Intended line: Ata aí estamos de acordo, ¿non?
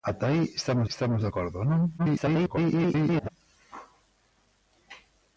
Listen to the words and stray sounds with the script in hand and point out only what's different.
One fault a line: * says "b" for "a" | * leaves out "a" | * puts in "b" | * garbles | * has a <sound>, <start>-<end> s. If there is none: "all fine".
* puts in "estamos"
* garbles